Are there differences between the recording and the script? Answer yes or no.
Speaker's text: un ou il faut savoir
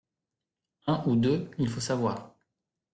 yes